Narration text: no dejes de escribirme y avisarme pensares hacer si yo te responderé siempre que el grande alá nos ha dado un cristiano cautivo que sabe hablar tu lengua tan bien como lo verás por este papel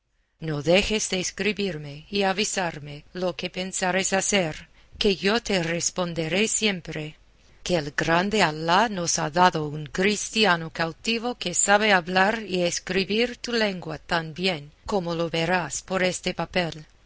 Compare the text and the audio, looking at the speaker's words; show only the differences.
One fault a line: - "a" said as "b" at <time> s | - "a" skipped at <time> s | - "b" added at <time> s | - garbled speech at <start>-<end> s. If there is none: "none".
- "lo que" added at 3.1 s
- "si" said as "que" at 5.0 s
- "y escribir" added at 12.5 s